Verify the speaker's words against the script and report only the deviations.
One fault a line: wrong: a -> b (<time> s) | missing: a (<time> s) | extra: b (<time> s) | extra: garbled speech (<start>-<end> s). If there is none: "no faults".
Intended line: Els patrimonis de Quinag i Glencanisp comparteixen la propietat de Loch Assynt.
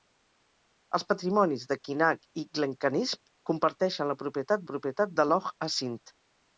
extra: propietat (4.7 s)